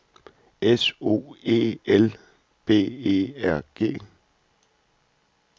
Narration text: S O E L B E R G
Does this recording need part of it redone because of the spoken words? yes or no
no